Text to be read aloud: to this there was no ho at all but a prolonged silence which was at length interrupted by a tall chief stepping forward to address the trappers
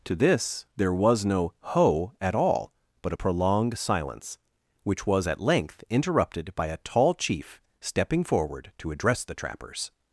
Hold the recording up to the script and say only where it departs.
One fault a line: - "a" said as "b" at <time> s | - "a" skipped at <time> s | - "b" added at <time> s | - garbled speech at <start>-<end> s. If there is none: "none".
none